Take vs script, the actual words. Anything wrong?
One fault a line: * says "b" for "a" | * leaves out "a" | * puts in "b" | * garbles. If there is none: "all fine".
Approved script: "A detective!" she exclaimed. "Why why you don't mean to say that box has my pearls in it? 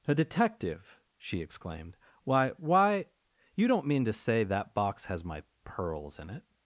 all fine